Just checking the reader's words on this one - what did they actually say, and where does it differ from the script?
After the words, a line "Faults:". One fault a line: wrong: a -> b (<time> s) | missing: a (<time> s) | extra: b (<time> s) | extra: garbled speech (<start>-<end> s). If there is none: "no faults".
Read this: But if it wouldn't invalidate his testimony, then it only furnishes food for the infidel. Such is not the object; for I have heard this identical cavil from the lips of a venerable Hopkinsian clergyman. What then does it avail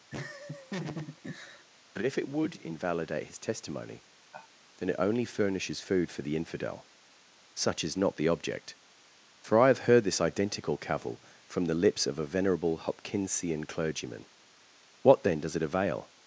But if it would invalidate his testimony, then it only furnishes food for the infidel. Such is not the object; for I have heard this identical cavil from the lips of a venerable Hopkinsian clergyman. What then does it avail
Faults:
wrong: wouldn't -> would (2.3 s)